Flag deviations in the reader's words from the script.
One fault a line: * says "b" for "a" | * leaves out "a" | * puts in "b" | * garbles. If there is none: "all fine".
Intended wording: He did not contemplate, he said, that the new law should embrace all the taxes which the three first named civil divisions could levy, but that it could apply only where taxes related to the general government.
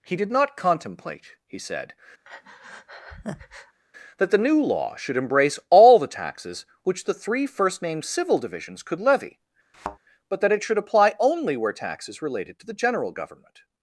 * says "should" for "could"